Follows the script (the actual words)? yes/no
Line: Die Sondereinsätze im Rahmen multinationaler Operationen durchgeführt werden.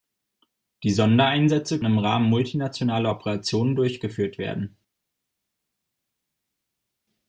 yes